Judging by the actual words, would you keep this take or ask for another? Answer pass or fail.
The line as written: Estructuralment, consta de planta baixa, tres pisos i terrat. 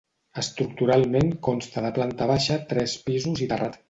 pass